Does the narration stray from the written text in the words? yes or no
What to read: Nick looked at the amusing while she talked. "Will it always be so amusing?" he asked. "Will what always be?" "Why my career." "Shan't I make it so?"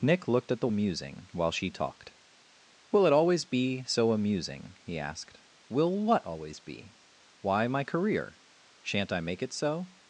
no